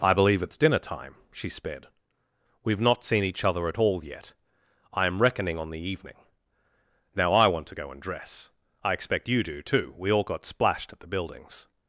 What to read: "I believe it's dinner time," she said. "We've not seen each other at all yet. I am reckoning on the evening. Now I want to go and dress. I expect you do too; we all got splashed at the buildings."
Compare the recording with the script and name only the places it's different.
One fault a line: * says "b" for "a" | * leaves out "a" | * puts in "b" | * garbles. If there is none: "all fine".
* says "sped" for "said"